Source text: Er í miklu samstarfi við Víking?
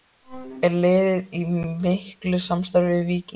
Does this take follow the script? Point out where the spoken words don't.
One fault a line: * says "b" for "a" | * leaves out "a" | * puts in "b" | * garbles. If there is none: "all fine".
* puts in "liðið"